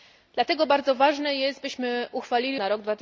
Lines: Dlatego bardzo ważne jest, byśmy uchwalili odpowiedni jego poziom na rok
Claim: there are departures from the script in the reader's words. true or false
true